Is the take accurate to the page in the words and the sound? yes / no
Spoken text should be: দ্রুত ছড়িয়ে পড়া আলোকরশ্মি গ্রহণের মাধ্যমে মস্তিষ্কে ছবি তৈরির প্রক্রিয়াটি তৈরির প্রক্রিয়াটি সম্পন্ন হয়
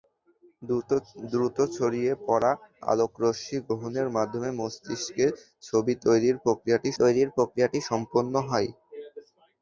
yes